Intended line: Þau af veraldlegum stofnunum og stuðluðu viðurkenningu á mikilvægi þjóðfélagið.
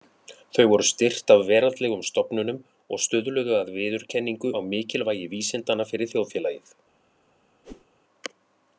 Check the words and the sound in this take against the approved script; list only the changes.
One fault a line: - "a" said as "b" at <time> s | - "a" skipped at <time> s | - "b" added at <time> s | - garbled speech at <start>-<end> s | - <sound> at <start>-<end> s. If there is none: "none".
- "voru styrkt" added at 0.7 s
- "að" added at 3.6 s
- "vísindanna fyrir" added at 5.4 s
- whoosh at 7.6-7.9 s